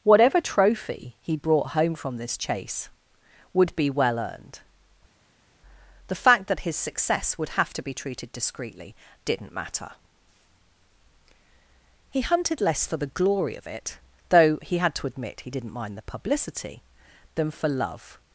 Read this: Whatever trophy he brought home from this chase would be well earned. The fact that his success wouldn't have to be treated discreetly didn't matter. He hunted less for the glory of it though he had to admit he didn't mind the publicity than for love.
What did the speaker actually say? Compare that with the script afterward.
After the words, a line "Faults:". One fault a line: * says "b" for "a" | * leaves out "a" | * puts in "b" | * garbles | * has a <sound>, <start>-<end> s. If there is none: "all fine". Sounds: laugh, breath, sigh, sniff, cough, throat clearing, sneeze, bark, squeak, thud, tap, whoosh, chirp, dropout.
Whatever trophy he brought home from this chase would be well earned. The fact that his success would have to be treated discreetly didn't matter. He hunted less for the glory of it though he had to admit he didn't mind the publicity than for love.
Faults:
* says "would" for "wouldn't"